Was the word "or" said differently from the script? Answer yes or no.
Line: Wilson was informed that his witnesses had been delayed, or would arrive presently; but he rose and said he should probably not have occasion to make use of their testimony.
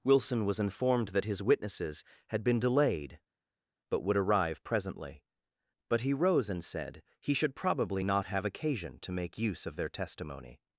yes